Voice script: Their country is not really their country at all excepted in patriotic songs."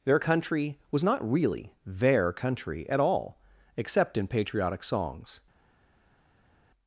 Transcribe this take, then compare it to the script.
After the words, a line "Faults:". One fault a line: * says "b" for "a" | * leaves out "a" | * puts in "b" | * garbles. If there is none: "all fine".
Their country was not really their country at all except in patriotic songs."
Faults:
* says "was" for "is"
* says "except" for "excepted"